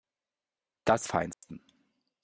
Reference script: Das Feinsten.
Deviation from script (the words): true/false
false